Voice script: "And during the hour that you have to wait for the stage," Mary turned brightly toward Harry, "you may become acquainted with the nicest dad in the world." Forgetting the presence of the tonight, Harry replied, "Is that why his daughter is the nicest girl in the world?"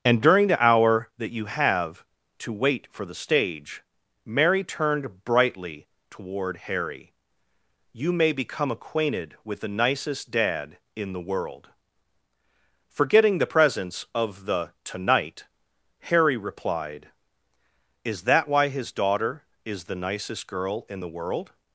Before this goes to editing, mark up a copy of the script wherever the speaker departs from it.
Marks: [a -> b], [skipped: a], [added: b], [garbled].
"And during the hour that you have to wait for the stage," Mary turned brightly toward Harry, "you may become acquainted with the nicest dad in the world." Forgetting the presence of the tonight, Harry replied, "Is that why his daughter is the nicest girl in the world?"